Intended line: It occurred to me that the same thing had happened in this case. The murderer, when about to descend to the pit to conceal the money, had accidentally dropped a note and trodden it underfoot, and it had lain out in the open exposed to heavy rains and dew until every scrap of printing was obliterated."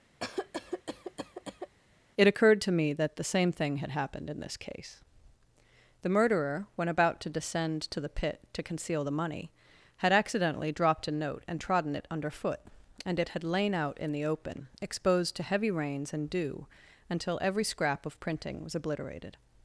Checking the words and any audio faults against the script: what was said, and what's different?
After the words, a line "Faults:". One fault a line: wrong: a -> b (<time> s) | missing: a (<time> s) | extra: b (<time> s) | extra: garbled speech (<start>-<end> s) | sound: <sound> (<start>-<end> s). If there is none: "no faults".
It occurred to me that the same thing had happened in this case. The murderer, when about to descend to the pit to conceal the money, had accidentally dropped a note and trodden it underfoot, and it had lain out in the open exposed to heavy rains and dew until every scrap of printing was obliterated."
Faults:
sound: cough (0.2-1.8 s)